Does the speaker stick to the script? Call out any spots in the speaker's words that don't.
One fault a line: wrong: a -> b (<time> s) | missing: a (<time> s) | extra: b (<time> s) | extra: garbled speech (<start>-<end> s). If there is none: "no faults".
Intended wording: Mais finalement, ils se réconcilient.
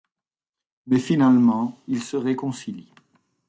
no faults